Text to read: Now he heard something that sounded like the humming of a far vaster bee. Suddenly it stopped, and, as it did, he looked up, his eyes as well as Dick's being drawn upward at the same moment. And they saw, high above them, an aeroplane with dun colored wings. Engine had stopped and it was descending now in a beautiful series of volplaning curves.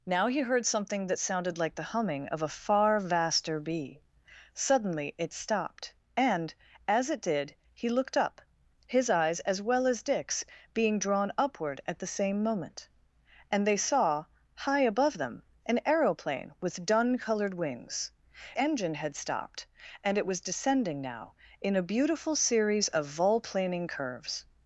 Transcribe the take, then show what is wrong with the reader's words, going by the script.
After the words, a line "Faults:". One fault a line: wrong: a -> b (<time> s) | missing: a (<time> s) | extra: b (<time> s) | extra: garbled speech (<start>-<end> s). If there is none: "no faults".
Now he heard something that sounded like the humming of a far vaster bee. Suddenly it stopped, and, as it did, he looked up, his eyes as well as Dick's being drawn upward at the same moment. And they saw, high above them, an aeroplane with dun colored wings. Engine had stopped and it was descending now in a beautiful series of volplaning curves.
Faults:
no faults